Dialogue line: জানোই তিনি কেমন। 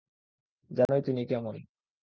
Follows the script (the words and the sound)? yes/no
no